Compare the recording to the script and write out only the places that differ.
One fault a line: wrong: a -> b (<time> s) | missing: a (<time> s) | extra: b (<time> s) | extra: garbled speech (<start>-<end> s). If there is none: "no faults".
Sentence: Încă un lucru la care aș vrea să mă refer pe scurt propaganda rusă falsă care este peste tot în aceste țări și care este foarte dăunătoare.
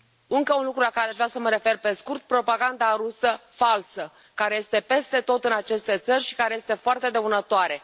no faults